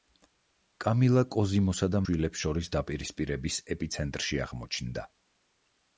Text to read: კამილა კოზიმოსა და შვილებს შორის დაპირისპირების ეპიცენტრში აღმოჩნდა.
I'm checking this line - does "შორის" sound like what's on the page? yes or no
yes